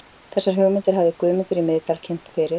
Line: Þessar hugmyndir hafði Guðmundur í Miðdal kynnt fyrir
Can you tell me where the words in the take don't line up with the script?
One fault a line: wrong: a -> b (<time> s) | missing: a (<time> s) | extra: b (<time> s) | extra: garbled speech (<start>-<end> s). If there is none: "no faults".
no faults